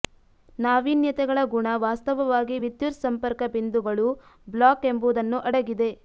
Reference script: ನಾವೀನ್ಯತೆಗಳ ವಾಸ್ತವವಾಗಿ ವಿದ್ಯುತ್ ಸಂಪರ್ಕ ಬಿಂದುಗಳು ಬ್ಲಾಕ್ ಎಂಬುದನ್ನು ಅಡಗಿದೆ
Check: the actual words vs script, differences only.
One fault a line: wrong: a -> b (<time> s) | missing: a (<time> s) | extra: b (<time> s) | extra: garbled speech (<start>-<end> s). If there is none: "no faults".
extra: ಗುಣ (1.5 s)